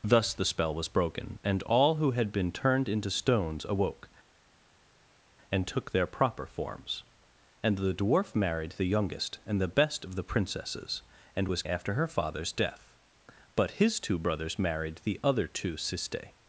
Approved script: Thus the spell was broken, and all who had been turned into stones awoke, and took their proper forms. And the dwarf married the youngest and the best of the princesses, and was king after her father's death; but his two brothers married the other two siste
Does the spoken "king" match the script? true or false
false